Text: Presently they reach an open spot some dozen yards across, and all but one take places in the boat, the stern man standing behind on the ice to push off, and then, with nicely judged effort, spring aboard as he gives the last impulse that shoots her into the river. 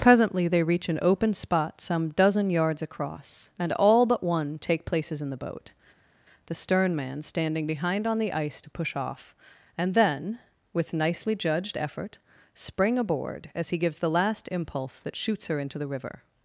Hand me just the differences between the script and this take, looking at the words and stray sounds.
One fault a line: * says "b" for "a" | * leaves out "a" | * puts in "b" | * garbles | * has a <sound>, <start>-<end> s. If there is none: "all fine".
all fine